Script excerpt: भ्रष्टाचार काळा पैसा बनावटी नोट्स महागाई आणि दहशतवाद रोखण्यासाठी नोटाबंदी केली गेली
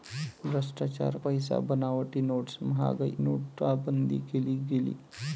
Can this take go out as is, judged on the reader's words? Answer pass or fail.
fail